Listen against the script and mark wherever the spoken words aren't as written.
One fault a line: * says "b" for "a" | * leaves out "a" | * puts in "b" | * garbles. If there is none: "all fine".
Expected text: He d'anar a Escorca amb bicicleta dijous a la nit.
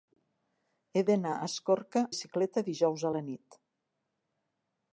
* leaves out "amb"